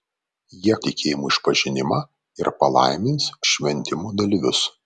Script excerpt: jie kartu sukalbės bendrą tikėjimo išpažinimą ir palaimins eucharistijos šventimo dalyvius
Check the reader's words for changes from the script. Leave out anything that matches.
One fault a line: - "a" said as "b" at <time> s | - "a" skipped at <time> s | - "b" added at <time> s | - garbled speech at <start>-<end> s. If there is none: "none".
- "kartu sukalbės bendrą" skipped at 0.8 s
- "eucharistijos" skipped at 3.3 s